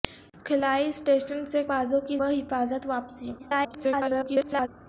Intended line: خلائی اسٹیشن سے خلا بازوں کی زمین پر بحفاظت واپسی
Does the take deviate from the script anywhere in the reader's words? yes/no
yes